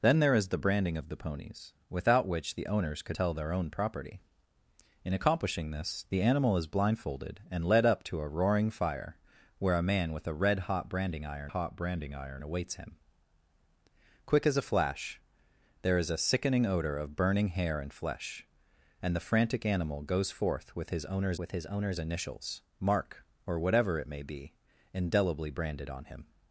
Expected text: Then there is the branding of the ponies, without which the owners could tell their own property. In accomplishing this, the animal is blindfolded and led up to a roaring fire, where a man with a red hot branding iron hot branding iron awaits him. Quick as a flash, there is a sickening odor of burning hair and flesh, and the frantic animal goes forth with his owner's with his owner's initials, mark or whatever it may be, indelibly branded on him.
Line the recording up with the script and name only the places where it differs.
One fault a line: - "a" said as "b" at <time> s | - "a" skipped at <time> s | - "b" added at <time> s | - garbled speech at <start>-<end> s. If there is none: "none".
none